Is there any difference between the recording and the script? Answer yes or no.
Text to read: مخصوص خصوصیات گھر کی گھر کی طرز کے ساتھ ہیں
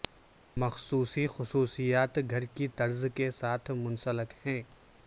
yes